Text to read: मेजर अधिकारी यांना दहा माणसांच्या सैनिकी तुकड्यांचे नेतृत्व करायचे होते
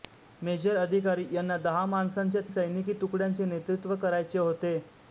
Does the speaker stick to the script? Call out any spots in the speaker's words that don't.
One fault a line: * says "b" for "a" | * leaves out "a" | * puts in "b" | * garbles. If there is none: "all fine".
all fine